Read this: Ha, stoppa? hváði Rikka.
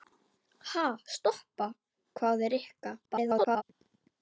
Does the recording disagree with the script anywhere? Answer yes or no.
yes